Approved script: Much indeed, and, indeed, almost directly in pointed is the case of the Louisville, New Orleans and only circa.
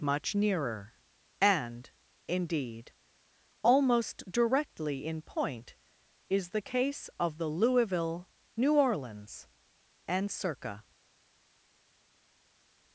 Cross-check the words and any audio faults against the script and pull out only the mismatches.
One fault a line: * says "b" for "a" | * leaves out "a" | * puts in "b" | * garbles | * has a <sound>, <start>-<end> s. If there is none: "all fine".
* says "nearer" for "indeed"
* says "point" for "pointed"
* leaves out "only"